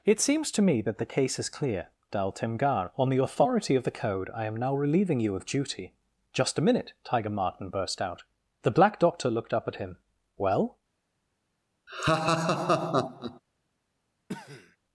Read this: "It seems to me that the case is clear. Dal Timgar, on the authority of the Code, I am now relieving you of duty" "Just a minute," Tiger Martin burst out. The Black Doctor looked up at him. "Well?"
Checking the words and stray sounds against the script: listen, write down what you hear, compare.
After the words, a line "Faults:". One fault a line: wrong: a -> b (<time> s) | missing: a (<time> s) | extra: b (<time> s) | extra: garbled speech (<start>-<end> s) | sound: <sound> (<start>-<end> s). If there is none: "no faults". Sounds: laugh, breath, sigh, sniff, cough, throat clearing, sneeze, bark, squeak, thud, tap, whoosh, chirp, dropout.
"It seems to me that the case is clear. Dal Timgar, on the authority of the Code, I am now relieving you of duty" "Just a minute," Tiger Martin burst out. The Black Doctor looked up at him. "Well?"
Faults:
sound: laugh (11.9-13.4 s)
sound: cough (14.3-14.8 s)